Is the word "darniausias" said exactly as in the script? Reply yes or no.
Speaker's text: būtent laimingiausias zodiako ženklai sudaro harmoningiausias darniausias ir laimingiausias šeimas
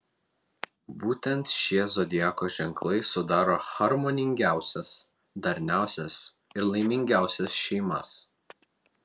yes